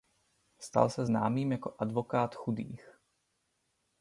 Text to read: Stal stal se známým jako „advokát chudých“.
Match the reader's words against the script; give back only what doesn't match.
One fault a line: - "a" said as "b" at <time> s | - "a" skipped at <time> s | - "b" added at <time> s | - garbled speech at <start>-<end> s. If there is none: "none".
- "stal" skipped at 0.9 s